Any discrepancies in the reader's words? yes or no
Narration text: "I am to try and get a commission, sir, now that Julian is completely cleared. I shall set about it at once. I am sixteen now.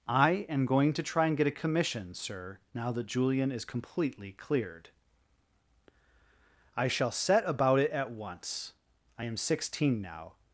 yes